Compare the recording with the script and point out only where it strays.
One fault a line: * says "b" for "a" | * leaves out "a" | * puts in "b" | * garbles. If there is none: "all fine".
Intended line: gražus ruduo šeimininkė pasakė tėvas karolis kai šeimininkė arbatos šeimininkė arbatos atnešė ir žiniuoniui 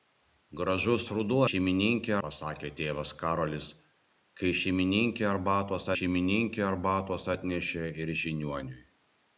all fine